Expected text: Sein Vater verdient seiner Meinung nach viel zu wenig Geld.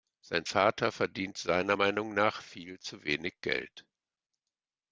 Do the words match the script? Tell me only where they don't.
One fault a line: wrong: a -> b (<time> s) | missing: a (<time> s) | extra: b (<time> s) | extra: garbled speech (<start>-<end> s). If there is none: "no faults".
no faults